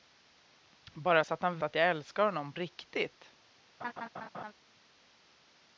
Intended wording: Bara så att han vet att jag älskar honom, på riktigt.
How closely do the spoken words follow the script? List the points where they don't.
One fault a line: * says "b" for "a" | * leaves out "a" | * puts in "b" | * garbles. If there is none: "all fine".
* leaves out "vet"
* leaves out "på"